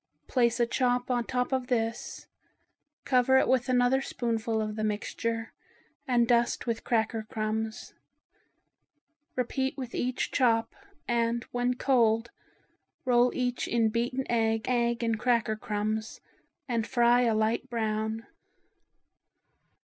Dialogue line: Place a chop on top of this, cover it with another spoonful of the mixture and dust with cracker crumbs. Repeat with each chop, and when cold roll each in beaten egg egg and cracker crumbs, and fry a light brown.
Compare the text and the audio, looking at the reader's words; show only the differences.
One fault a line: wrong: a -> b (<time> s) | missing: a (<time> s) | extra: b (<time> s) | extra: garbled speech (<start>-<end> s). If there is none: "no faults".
no faults